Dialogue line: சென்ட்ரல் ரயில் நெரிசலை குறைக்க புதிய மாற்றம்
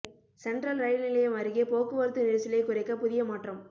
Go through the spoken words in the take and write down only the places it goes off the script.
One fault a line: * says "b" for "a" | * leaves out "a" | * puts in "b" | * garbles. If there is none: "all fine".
* puts in "நிலையம் அருகே போக்குவரத்து"